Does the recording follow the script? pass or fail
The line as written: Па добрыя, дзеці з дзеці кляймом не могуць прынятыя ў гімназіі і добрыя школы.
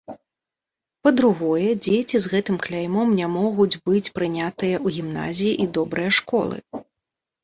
fail